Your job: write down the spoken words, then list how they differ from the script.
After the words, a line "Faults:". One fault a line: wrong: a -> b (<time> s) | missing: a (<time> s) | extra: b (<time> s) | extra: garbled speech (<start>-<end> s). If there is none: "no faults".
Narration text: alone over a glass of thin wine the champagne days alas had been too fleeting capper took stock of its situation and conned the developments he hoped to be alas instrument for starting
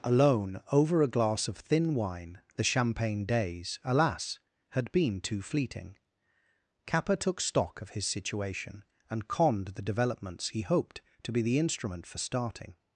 alone over a glass of thin wine the champagne days alas had been too fleeting capper took stock of his situation and conned the developments he hoped to be the instrument for starting
Faults:
wrong: its -> his (7.9 s)
wrong: alas -> the (11.4 s)